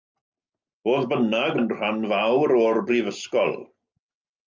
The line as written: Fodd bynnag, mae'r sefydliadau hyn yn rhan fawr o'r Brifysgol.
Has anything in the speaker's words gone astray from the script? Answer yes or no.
yes